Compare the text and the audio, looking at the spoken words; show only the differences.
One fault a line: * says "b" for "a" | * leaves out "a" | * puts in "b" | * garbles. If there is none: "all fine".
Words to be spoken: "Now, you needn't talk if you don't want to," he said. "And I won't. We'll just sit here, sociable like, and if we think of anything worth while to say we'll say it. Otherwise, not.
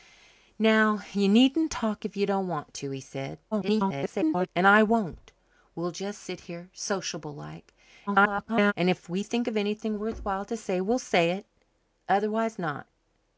* garbles
* garbles